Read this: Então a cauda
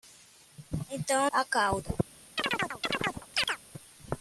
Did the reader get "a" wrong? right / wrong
right